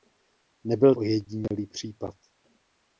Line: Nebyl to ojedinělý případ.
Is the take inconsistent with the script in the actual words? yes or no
yes